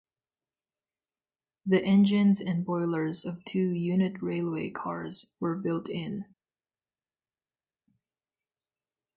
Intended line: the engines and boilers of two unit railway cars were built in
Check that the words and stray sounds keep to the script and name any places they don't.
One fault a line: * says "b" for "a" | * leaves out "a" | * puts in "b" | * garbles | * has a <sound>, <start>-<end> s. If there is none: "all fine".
all fine